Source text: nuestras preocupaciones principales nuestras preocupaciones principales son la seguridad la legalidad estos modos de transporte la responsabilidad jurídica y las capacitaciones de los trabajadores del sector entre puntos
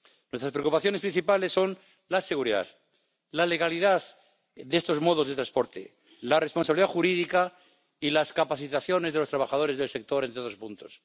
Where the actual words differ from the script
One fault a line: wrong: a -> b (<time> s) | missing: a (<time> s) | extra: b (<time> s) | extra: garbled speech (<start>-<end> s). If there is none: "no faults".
missing: nuestras preocupaciones principales (1.5 s)
extra: de (4.5 s)
extra: otros (10.4 s)